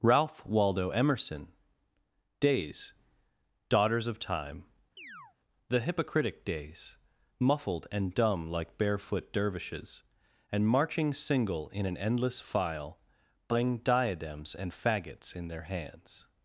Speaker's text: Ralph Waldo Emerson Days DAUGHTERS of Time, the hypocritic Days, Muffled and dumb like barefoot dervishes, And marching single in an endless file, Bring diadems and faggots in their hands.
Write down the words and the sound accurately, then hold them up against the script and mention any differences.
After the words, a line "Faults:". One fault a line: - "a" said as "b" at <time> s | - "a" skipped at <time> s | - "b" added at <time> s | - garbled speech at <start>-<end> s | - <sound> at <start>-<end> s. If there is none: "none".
Ralph Waldo Emerson Days DAUGHTERS of Time, the hypocritic Days, Muffled and dumb like barefoot dervishes, And marching single in an endless file, Bring diadems and faggots in their hands.
Faults:
- chirp at 5.0-5.4 s